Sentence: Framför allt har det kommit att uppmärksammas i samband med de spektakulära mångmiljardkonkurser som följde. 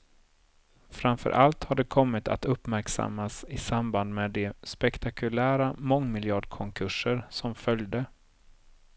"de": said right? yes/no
yes